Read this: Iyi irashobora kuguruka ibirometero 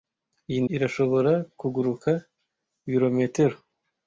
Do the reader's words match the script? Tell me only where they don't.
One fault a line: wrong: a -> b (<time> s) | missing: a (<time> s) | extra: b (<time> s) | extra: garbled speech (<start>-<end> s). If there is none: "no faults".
no faults